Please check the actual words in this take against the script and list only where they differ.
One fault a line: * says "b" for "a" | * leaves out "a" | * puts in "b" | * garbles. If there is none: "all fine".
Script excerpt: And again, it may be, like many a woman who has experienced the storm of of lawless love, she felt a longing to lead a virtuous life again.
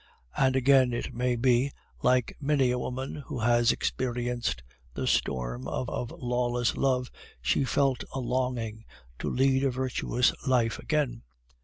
all fine